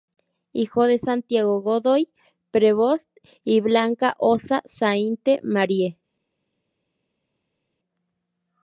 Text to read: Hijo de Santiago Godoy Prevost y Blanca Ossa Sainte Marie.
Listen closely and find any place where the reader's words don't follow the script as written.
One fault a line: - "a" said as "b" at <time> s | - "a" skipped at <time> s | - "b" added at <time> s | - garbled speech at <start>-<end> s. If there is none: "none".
none